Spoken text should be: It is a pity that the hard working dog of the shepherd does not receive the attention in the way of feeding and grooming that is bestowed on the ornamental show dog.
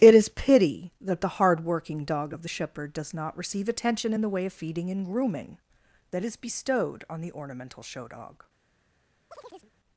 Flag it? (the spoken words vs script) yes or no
yes